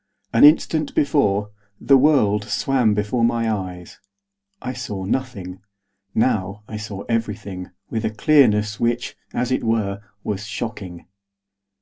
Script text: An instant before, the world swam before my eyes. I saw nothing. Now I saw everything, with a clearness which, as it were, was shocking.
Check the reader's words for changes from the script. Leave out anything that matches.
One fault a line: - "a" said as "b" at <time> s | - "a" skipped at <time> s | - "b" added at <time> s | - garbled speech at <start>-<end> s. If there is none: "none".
none